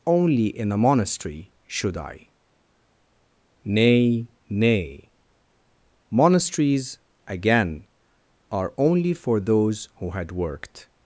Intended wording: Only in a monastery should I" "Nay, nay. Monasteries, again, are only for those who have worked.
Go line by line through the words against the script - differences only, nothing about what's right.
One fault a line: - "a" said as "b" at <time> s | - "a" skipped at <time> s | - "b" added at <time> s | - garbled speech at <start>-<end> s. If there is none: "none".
- "have" said as "had" at 10.1 s